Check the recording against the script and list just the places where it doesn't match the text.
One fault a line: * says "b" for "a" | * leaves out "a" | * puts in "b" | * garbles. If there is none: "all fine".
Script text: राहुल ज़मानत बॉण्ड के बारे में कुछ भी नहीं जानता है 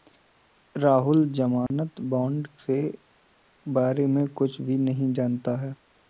all fine